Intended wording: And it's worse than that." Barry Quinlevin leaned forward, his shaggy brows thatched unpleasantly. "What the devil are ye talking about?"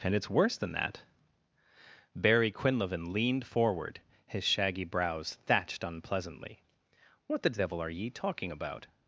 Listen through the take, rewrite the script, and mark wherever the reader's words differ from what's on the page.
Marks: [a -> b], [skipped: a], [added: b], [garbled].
And it's worse than that." Barry Quinlevin leaned forward, his shaggy brows thatched unpleasantly. "What the devil are ye talking about?"